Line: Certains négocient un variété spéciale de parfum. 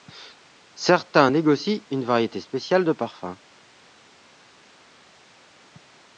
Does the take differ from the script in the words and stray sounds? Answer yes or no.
yes